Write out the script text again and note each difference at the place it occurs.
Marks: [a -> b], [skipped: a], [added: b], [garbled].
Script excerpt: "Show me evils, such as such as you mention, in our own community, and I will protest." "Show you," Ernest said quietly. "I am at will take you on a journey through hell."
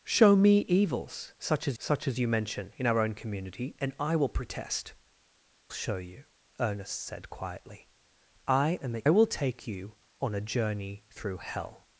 "Show me evils, such as such as you mention, in our own community, and I will protest." "Show you," Ernest said quietly. "I am at will take you on a journey through hell."